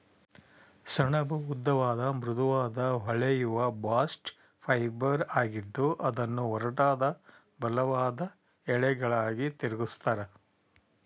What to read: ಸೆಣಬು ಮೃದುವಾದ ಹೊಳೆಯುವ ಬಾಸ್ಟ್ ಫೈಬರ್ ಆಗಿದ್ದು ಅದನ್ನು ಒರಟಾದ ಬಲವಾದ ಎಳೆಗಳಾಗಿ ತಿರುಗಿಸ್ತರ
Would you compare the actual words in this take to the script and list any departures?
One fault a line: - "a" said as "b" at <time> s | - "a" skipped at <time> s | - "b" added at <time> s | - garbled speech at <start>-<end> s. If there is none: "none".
- "ಉದ್ದವಾದ" added at 1.5 s